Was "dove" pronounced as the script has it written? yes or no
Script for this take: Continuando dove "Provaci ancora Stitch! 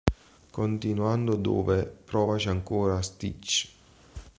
yes